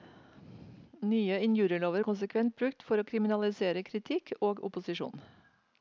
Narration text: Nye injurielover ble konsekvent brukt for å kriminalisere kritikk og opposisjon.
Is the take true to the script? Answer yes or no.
no